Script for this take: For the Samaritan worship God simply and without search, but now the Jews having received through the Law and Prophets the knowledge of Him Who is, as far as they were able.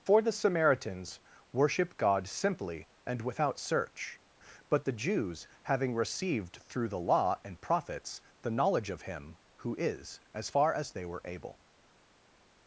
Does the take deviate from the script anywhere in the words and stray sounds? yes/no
yes